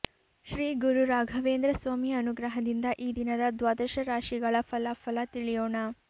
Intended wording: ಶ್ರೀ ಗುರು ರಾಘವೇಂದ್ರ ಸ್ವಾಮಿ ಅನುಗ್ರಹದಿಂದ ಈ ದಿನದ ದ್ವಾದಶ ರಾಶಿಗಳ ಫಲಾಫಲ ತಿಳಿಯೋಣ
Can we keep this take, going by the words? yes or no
yes